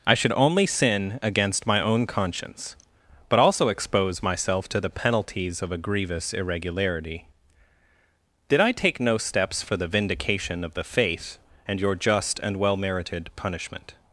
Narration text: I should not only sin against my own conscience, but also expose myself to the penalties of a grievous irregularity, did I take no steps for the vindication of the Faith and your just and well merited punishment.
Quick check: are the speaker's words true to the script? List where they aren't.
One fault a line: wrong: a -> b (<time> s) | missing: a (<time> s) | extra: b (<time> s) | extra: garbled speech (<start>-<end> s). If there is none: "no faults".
missing: not (0.3 s)